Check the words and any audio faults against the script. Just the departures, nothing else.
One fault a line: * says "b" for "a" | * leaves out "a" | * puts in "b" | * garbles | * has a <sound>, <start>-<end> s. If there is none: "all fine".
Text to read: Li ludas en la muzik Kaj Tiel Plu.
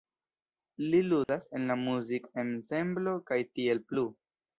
* has a dropout, 1.2-1.3 s
* puts in "ensemblo"